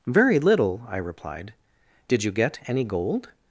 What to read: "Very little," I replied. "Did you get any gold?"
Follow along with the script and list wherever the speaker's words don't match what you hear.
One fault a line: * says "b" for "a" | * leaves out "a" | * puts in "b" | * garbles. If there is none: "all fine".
all fine